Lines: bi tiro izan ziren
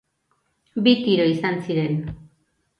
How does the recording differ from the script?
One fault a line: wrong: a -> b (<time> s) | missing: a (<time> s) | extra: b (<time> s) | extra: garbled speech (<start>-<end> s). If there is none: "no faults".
no faults